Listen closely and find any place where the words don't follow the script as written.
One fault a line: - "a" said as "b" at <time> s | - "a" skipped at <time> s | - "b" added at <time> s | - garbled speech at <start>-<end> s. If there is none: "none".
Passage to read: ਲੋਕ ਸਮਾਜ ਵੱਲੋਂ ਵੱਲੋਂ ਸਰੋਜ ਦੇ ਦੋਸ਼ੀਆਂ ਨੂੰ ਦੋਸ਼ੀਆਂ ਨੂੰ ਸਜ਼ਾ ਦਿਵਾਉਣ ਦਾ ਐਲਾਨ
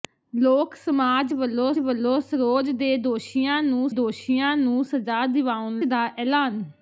none